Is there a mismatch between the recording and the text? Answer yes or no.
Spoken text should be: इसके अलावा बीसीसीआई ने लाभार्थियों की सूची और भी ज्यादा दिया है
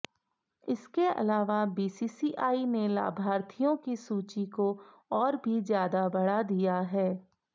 yes